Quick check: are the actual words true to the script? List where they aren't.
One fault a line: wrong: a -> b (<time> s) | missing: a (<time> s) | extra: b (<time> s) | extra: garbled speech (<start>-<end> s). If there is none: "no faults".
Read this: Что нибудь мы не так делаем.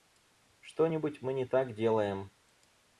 no faults